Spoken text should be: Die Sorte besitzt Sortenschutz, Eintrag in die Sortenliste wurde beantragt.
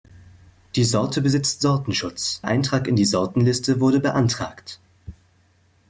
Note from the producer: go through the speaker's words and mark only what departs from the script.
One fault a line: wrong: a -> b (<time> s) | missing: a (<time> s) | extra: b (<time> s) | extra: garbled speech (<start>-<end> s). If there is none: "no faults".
no faults